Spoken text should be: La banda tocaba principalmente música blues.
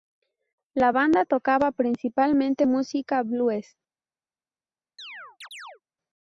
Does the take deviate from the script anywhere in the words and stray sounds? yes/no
yes